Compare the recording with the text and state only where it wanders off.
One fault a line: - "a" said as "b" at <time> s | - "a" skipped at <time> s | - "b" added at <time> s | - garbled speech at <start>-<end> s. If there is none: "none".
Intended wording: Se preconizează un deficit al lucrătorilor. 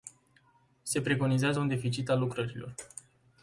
none